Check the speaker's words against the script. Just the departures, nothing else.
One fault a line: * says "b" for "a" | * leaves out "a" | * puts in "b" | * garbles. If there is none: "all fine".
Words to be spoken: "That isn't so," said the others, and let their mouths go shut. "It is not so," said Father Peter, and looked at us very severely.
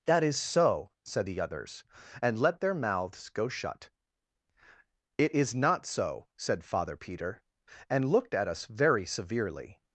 * says "is" for "isn't"